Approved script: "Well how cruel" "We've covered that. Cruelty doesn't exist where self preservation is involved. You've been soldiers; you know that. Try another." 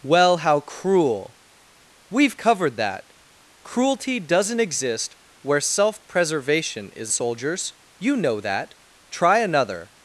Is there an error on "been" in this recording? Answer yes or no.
yes